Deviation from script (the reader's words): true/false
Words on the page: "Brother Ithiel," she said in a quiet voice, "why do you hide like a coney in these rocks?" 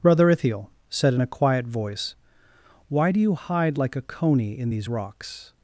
true